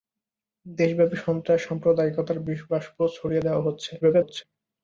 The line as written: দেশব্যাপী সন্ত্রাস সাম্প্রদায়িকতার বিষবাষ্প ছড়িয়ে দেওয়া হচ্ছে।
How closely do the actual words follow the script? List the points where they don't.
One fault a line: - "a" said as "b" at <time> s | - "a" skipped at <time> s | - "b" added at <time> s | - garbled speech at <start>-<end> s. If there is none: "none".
- garbled speech at 4.0-4.4 s